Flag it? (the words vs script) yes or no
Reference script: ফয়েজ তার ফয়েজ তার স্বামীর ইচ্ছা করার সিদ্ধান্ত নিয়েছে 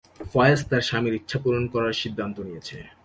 yes